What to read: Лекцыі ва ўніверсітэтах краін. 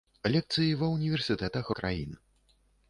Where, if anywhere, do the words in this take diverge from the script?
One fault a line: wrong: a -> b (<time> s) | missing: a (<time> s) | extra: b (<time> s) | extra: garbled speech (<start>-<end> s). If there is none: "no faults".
no faults